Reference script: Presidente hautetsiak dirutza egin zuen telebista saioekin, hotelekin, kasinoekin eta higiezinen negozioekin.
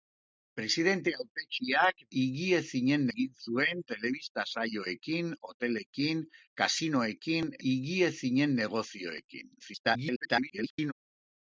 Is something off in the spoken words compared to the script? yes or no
yes